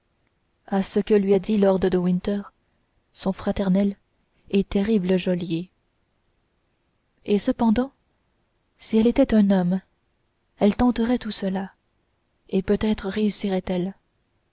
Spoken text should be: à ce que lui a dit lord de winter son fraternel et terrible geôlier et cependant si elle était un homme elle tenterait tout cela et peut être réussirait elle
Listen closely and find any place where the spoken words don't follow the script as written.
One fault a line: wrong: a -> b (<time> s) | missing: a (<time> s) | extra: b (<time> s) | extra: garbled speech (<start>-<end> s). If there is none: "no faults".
no faults